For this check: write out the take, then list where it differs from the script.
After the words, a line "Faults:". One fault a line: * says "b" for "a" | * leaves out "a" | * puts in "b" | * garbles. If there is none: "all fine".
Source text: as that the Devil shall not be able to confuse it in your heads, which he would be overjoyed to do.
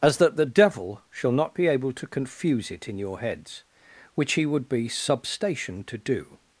as that the Devil shall not be able to confuse it in your heads, which he would be substation to do.
Faults:
* says "substation" for "overjoyed"